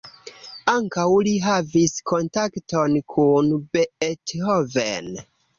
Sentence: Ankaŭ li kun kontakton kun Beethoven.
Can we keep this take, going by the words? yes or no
no